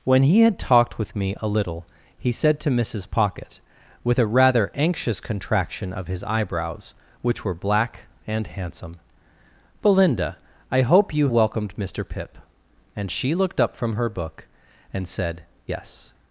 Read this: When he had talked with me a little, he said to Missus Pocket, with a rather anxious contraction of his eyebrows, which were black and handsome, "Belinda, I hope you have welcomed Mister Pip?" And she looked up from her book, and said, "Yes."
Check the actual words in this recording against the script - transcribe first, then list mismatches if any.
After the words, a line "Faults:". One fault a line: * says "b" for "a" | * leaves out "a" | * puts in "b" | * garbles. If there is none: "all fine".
When he had talked with me a little, he said to Missus Pocket, with a rather anxious contraction of his eyebrows, which were black and handsome, "Belinda, I hope you welcomed Mister Pip?" And she looked up from her book, and said, "Yes."
Faults:
* leaves out "have"